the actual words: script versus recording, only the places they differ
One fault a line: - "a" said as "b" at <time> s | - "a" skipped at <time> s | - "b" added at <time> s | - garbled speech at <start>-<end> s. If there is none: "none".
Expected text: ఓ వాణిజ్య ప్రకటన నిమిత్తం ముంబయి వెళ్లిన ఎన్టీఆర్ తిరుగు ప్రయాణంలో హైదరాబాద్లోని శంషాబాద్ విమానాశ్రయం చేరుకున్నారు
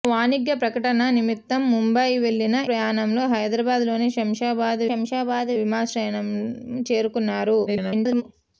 - "ఎన్టీఆర్ తిరుగు" skipped at 2.6 s
- "శంషాబాద్" added at 4.9 s
- garbled speech at 7.7-8.2 s